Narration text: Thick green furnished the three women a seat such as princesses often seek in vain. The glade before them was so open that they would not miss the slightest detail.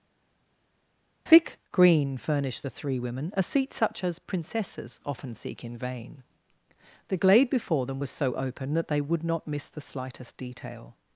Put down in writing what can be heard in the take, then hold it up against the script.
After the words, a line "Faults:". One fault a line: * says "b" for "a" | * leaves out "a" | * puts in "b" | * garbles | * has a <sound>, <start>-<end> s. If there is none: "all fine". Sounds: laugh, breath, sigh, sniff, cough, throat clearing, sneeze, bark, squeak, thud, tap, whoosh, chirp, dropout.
Thick green furnished the three women a seat such as princesses often seek in vain. The glade before them was so open that they would not miss the slightest detail.
Faults:
all fine